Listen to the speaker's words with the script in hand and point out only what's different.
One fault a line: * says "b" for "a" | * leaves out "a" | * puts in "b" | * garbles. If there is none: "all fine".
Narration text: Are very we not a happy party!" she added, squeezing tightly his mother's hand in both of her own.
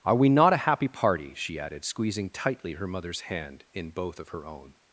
* leaves out "very"
* says "her" for "his"